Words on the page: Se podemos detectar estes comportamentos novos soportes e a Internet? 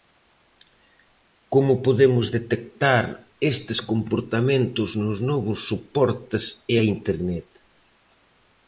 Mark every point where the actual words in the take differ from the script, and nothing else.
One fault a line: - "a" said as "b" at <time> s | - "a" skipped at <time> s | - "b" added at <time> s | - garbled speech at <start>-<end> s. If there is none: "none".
- "Se" said as "Como" at 1.5 s
- "nos" added at 5.0 s